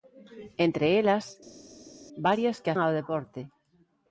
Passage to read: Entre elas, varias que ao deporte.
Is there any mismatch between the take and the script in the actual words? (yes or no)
no